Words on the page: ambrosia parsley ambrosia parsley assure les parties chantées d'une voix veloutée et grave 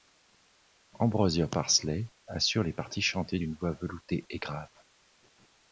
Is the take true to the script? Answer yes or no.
no